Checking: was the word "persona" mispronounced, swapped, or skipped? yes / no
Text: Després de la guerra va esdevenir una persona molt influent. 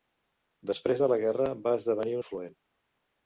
yes